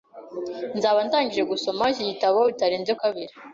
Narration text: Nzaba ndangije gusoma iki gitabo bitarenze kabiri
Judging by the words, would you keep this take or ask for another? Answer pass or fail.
pass